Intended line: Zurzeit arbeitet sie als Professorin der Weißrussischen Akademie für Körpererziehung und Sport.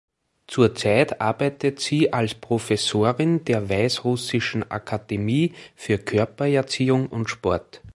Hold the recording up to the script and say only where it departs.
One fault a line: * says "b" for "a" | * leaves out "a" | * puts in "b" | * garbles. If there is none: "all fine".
all fine